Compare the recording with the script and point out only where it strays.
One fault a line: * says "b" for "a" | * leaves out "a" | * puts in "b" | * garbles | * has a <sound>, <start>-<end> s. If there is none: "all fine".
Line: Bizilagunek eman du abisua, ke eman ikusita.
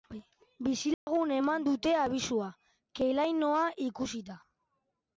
* has a dropout, 0.9-1.1 s
* says "dute" for "du"
* says "lainoa" for "eman"